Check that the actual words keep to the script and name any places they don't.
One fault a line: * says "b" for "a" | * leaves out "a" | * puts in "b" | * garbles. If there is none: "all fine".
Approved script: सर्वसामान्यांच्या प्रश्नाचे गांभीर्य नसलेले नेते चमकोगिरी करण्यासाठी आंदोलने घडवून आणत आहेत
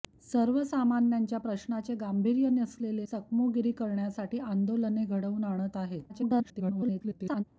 * leaves out "नेते"
* garbles